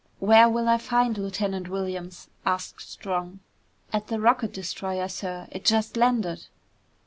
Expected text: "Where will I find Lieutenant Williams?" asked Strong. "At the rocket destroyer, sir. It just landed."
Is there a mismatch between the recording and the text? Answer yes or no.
no